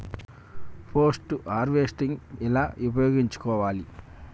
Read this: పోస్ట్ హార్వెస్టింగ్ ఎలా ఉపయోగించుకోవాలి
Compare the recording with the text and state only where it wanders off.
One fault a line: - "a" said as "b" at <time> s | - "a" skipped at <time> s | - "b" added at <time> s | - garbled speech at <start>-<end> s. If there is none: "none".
none